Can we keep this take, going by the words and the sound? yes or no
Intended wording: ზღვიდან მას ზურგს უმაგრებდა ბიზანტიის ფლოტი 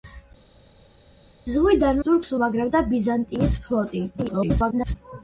no